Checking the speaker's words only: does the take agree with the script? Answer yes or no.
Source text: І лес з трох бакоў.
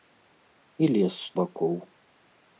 no